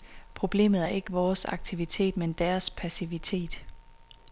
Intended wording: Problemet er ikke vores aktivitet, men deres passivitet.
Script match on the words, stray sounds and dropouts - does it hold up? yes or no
yes